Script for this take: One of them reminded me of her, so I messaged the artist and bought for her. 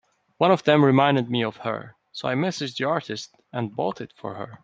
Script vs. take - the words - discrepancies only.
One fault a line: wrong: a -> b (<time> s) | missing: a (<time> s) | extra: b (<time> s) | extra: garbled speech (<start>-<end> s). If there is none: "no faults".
extra: it (4.0 s)